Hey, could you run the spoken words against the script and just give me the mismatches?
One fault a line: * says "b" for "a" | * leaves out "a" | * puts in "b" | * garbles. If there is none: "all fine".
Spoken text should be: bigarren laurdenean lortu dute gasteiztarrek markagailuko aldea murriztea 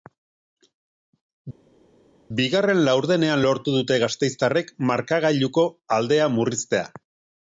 all fine